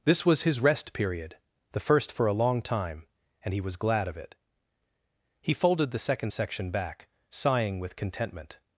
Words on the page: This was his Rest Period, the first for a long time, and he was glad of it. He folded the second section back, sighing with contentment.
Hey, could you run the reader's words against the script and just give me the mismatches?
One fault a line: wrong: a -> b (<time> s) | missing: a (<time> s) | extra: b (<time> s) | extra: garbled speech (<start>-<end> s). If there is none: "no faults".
no faults